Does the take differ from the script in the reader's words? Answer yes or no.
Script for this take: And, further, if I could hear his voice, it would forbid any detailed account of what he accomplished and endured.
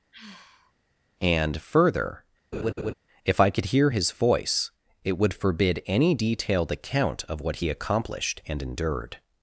no